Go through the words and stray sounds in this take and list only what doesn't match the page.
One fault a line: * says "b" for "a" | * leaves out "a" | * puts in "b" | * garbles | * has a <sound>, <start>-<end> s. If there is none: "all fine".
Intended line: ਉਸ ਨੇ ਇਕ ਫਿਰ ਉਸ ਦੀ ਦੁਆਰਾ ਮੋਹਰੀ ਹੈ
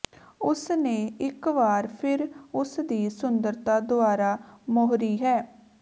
* puts in "ਵਾਰ"
* puts in "ਸੁੰਦਰਤਾ"